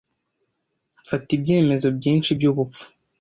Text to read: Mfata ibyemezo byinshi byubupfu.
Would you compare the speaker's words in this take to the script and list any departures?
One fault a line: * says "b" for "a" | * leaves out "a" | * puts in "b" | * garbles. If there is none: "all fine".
all fine